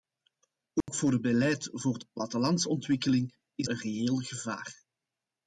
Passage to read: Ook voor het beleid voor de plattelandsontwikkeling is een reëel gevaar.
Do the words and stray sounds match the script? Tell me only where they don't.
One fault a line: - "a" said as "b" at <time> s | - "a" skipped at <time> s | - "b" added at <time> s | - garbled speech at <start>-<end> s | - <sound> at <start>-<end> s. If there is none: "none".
- dropout at 0.8-0.9 s